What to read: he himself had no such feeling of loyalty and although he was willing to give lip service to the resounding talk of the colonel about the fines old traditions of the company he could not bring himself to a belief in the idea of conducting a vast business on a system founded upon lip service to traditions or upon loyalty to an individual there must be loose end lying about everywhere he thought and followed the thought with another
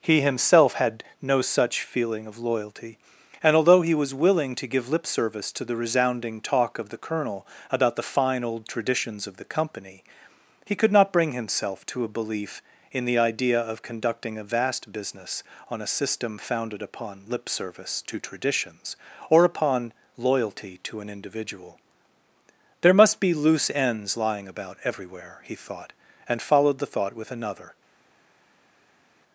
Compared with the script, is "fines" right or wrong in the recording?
wrong